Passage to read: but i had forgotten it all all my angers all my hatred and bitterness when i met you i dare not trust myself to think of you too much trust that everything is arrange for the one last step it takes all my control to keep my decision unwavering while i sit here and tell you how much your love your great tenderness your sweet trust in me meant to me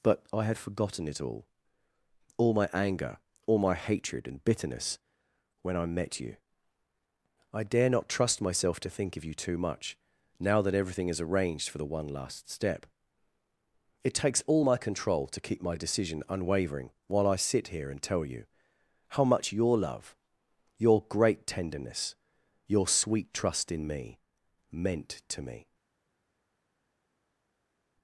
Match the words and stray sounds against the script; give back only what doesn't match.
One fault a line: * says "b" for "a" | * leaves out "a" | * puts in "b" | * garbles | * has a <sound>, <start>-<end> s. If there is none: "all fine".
* says "anger" for "angers"
* says "now" for "trust"
* says "arranged" for "arrange"